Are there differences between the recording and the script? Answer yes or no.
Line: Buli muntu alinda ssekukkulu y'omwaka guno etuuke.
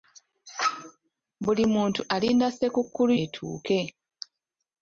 yes